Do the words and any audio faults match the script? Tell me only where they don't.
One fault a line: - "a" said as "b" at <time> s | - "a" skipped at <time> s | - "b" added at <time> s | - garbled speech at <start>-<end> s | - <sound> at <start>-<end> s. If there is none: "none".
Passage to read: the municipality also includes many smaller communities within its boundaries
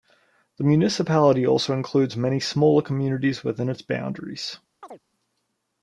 - chirp at 4.8-5.0 s